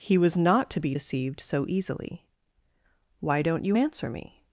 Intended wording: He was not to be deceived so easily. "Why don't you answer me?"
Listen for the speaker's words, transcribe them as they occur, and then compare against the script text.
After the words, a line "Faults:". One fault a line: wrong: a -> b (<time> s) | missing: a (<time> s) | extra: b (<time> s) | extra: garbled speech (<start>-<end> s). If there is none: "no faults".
He was not to be deceived so easily. "Why don't you answer me?"
Faults:
no faults